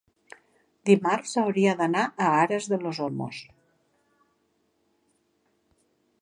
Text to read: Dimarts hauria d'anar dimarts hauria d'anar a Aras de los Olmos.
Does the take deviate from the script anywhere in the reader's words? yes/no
yes